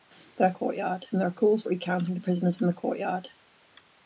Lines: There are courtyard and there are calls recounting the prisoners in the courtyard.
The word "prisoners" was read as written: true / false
true